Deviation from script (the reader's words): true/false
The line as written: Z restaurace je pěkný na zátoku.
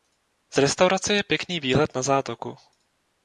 true